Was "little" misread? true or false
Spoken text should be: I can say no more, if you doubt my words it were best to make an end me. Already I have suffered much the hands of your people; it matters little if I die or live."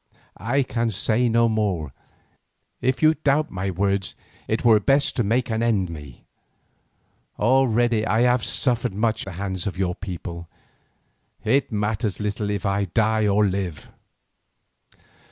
false